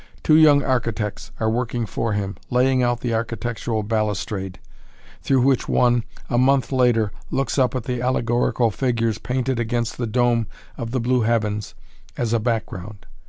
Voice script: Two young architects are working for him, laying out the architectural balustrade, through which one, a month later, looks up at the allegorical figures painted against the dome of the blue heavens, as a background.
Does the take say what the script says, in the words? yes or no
yes